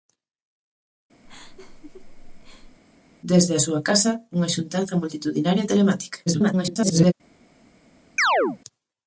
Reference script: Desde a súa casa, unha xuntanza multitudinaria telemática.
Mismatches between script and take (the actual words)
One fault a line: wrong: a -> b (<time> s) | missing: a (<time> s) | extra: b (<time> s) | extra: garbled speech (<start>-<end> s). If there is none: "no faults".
extra: garbled speech (6.3-7.1 s)